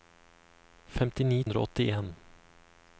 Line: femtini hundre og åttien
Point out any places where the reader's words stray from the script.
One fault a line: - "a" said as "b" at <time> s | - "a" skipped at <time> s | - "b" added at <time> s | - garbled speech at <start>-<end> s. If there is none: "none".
none